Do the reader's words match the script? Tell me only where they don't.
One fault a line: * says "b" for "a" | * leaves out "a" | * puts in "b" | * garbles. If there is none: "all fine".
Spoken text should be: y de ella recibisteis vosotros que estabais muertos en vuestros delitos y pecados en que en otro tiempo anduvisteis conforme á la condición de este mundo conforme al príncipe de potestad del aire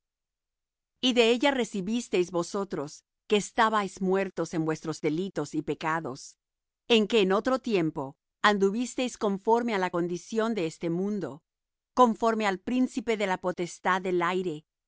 * puts in "la"